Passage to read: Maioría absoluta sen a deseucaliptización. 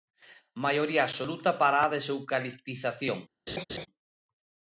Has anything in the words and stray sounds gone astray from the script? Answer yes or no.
yes